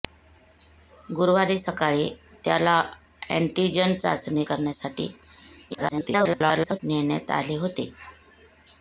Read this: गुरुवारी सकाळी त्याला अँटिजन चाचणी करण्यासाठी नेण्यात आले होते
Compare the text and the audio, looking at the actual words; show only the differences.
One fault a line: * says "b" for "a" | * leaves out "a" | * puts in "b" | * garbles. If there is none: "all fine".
* garbles